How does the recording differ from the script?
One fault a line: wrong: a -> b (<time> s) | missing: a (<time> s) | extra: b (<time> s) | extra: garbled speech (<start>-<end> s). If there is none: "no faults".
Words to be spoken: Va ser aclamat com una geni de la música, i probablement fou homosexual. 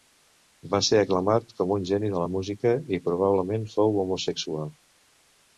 wrong: una -> un (1.8 s)